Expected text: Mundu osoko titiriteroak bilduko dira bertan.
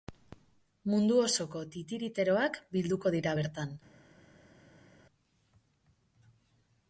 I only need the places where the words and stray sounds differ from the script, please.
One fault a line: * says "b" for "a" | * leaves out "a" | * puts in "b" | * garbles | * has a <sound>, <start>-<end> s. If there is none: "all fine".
all fine